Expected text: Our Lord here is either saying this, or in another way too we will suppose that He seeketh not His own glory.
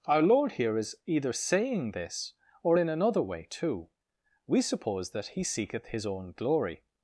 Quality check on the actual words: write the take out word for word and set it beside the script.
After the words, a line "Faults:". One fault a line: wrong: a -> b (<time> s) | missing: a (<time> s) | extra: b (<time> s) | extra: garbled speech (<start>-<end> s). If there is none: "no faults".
Our Lord here is either saying this, or in another way too we suppose that He seeketh His own glory.
Faults:
missing: will (4.6 s)
missing: not (5.9 s)